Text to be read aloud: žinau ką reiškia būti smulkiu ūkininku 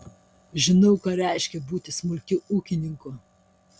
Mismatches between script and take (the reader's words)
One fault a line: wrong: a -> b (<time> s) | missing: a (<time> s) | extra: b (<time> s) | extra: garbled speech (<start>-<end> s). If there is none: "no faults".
no faults